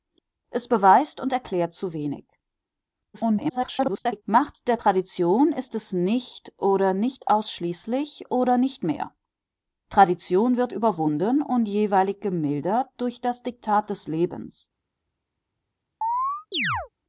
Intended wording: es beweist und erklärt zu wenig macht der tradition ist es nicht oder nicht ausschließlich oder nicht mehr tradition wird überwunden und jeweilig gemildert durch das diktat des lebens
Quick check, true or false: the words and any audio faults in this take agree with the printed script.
false